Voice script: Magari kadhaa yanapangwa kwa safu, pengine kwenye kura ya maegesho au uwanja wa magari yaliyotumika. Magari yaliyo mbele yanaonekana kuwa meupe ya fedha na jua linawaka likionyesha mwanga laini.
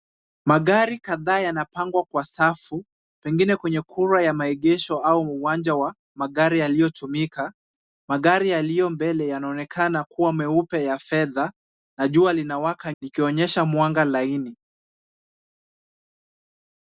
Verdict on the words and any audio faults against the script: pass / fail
pass